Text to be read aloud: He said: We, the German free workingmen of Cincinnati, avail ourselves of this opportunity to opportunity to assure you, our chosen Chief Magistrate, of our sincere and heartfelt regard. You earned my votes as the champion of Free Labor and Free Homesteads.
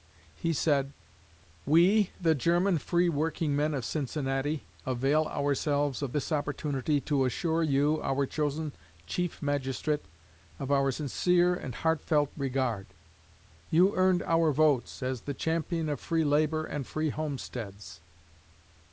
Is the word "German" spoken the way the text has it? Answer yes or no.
yes